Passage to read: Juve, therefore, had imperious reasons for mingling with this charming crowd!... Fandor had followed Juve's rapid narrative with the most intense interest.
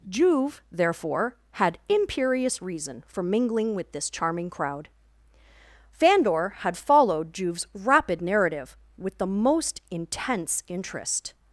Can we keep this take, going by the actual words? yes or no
no